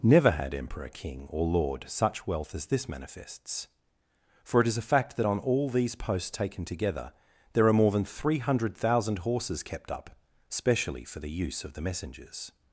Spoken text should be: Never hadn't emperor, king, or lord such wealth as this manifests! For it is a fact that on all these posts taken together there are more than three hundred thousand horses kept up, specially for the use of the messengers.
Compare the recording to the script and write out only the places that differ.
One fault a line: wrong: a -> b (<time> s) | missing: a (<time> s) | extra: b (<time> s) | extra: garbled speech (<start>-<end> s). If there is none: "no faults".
wrong: hadn't -> had (0.3 s)